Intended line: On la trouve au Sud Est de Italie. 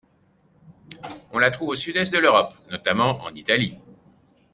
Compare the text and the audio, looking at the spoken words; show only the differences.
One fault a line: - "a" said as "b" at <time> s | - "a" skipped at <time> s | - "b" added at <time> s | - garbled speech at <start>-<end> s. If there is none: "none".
- "l'Europe notamment en" added at 2.2 s